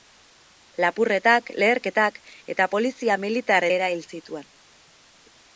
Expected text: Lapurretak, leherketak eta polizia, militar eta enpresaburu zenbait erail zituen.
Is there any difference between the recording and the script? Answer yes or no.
yes